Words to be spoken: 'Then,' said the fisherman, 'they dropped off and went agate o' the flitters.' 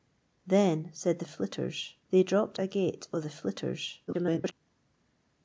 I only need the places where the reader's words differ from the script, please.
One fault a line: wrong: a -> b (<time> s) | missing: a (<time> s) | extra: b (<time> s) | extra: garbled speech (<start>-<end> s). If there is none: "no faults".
wrong: fisherman -> flitters (1.2 s)
missing: off and went (2.6 s)
extra: garbled speech (4.1-4.5 s)